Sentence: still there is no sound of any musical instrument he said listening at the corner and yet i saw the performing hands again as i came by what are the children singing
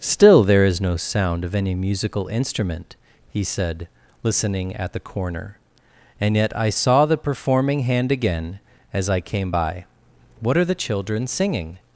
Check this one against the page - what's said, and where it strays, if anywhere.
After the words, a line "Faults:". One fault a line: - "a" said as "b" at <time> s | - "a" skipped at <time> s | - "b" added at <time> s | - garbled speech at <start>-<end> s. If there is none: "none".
still there is no sound of any musical instrument he said listening at the corner and yet i saw the performing hand again as i came by what are the children singing
Faults:
- "hands" said as "hand" at 7.8 s